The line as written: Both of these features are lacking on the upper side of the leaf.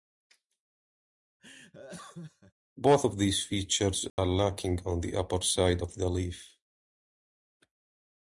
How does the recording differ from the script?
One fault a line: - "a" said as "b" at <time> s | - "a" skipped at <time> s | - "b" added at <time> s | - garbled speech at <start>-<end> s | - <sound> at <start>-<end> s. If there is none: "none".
- laugh at 1.4-2.5 s
- dropout at 4.1-4.2 s